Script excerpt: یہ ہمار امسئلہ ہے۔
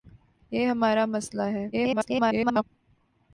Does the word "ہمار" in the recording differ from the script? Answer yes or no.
no